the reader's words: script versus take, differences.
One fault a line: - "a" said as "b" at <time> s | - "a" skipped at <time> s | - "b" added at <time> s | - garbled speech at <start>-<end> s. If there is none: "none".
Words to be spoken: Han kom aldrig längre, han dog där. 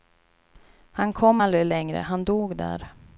none